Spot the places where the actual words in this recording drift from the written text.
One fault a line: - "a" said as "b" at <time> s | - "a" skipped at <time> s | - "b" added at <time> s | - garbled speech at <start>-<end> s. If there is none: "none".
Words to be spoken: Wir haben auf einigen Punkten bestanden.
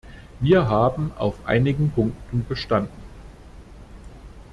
none